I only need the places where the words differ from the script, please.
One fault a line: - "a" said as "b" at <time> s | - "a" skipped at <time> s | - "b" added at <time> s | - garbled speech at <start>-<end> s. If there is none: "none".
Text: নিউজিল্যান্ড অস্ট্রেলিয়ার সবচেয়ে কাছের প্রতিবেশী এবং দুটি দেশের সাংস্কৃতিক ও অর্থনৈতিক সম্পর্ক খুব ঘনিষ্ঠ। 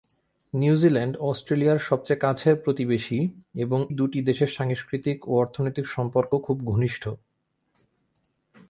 none